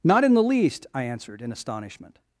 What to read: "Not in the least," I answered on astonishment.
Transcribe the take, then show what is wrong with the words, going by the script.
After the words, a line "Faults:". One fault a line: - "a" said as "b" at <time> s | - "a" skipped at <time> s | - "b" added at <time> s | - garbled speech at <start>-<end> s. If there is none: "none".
"Not in the least," I answered in astonishment.
Faults:
- "on" said as "in" at 1.4 s